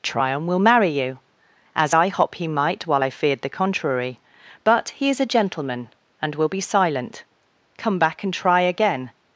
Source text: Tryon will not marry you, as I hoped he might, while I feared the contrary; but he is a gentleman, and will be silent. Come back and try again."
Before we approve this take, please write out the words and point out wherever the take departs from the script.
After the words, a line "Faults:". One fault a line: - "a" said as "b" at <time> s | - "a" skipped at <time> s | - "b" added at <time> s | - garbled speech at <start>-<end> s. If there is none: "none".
Tryon will marry you, as I hop he might, while I feared the contrary; but he is a gentleman, and will be silent. Come back and try again."
Faults:
- "not" skipped at 0.6 s
- "hoped" said as "hop" at 2.1 s